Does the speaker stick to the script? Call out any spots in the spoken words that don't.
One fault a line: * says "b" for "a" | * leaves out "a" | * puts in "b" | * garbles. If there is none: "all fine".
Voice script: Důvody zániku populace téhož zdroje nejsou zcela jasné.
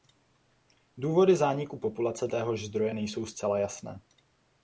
all fine